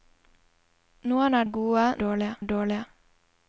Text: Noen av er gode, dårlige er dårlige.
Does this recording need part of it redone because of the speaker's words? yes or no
no